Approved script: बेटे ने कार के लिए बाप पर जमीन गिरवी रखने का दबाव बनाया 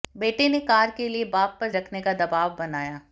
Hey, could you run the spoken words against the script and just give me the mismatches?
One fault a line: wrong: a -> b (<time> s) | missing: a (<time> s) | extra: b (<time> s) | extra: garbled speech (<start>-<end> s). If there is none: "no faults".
missing: जमीन गिरवी (1.7 s)